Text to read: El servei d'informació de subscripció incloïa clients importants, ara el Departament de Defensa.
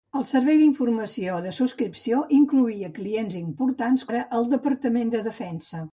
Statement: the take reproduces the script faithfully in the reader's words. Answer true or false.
true